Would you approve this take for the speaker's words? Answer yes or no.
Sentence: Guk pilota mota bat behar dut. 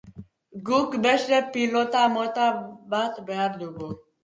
no